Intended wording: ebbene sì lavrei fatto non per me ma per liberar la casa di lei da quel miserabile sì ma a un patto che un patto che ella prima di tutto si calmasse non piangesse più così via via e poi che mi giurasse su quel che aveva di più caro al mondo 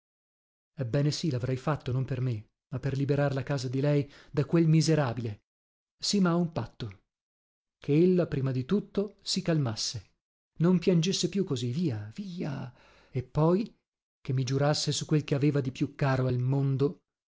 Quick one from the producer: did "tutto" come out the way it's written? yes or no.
yes